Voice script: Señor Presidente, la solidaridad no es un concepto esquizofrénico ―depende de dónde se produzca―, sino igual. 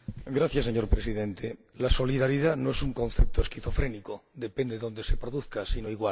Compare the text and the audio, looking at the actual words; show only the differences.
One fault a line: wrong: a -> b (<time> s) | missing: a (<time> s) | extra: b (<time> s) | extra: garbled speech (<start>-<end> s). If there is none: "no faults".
no faults